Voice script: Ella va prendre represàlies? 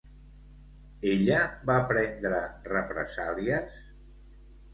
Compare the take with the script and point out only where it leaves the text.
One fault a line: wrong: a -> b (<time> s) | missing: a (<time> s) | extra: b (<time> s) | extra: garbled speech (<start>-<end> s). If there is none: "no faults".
no faults